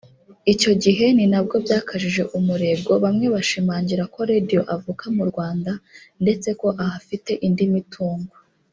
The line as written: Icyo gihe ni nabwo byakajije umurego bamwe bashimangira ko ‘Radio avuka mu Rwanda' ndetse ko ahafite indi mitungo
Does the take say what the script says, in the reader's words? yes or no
yes